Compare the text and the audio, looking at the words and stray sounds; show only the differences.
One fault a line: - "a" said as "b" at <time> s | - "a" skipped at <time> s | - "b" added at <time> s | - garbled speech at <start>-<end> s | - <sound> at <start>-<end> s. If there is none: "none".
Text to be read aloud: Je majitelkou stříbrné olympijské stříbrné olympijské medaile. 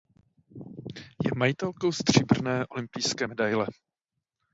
- "stříbrné olympijské" skipped at 3.3 s